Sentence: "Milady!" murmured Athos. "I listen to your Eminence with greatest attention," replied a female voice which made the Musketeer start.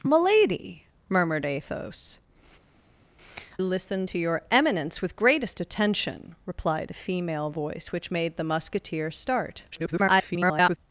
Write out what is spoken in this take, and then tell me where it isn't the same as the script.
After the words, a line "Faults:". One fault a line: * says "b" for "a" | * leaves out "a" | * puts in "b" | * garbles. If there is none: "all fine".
"Milady!" murmured Athos. "listen to your Eminence with greatest attention," replied a female voice which made the Musketeer start. [garbled]
Faults:
* leaves out "I"
* garbles